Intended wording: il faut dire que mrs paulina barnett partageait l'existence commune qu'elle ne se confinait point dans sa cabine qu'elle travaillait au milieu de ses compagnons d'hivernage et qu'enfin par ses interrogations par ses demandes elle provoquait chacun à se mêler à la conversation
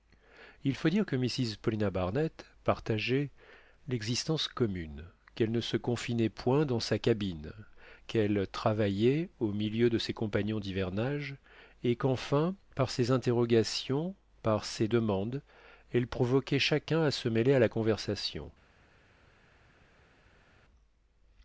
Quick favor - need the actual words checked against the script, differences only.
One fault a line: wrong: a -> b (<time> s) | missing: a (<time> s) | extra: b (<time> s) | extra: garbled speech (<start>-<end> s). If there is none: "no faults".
no faults